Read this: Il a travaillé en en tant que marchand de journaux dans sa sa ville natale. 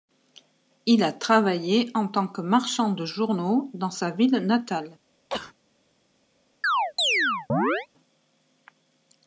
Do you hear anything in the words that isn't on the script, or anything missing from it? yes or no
yes